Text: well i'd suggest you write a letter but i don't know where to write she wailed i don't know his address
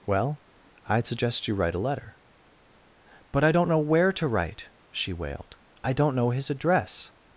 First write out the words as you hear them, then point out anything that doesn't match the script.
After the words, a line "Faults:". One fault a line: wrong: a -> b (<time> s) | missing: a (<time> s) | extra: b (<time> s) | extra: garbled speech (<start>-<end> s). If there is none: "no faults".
well i'd suggest you write a letter but i don't know where to write she wailed i don't know his address
Faults:
no faults